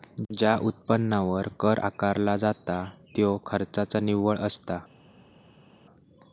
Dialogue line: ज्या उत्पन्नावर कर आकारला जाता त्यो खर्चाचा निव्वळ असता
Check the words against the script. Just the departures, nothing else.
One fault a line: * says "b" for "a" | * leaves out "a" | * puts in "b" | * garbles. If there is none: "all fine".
all fine